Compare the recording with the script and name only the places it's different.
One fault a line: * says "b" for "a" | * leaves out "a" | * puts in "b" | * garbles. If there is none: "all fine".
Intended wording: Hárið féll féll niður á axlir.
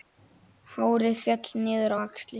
* leaves out "féll"